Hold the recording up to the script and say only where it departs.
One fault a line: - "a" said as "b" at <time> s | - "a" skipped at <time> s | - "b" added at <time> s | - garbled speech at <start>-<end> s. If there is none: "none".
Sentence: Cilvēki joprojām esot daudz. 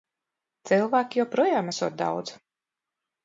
none